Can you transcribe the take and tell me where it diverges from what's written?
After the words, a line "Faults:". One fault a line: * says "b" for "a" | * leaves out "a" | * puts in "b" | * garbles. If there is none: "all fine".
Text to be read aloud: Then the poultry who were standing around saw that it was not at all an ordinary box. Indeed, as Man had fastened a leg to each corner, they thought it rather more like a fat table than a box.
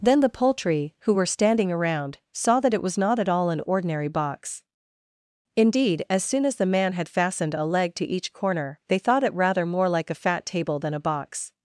Then the poultry who were standing around saw that it was not at all an ordinary box. Indeed, as soon as the Man had fastened a leg to each corner, they thought it rather more like a fat table than a box.
Faults:
* puts in "soon as the"